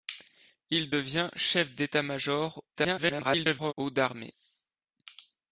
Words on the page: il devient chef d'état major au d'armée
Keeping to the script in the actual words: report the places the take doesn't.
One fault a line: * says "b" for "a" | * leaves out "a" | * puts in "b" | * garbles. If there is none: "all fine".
* garbles